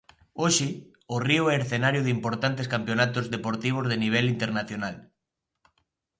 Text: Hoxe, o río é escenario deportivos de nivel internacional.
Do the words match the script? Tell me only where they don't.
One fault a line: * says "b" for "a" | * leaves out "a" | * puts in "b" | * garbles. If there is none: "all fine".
* puts in "de importantes campionatos"